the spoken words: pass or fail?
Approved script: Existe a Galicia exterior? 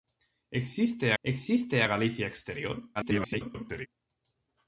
fail